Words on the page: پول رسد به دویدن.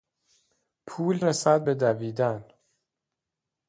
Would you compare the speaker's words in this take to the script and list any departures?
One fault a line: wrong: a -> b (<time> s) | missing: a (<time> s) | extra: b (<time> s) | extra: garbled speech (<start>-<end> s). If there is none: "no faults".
no faults